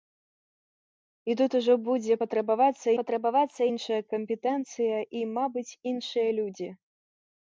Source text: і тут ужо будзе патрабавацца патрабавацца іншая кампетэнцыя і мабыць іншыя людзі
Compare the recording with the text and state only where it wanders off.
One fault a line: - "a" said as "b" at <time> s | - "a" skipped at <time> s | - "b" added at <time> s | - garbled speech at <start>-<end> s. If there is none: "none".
none